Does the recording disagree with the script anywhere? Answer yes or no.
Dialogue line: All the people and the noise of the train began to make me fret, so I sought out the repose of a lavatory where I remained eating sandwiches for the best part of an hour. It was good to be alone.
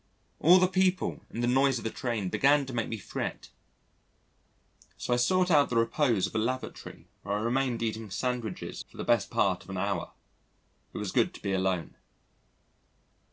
no